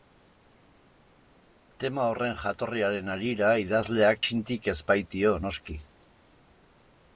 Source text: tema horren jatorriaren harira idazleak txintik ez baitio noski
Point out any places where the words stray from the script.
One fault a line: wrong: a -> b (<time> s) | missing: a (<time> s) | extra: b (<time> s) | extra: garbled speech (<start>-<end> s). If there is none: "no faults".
no faults